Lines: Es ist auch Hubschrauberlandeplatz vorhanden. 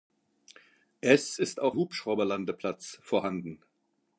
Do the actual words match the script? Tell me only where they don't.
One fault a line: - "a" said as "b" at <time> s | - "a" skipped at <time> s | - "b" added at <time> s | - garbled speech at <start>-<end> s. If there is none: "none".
none